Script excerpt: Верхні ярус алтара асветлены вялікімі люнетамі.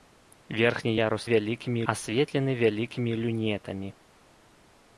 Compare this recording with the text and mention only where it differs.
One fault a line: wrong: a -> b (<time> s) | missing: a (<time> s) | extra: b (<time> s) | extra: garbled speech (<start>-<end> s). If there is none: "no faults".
wrong: алтара -> вялікімі (1.3 s)